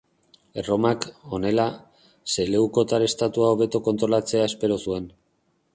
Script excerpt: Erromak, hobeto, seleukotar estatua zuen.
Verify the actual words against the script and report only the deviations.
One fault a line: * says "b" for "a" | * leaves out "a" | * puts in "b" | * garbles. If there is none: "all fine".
* says "honela" for "hobeto"
* puts in "hobeto kontrolatzea espero"